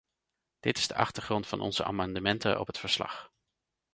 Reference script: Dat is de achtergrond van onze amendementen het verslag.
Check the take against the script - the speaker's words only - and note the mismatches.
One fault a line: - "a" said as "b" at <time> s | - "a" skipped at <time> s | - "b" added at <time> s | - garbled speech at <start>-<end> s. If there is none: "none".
- "Dat" said as "Dit" at 0.6 s
- "op" added at 2.6 s